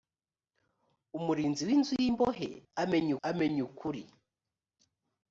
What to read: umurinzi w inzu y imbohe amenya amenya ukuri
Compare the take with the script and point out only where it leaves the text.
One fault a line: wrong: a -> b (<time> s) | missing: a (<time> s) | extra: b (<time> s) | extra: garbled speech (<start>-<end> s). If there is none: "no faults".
no faults